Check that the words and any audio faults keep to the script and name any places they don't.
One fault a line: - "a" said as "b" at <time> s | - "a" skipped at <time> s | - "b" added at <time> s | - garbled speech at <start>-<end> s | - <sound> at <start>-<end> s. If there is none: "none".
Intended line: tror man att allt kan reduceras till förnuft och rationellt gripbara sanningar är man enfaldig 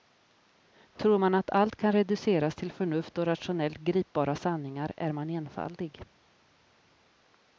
none